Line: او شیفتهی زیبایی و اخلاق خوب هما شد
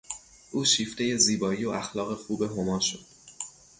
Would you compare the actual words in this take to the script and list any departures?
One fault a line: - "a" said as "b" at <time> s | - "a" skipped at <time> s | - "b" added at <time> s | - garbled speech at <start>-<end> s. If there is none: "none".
none